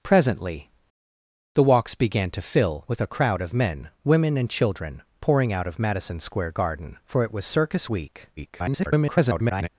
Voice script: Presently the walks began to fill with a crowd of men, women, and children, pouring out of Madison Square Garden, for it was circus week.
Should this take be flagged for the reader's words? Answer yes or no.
yes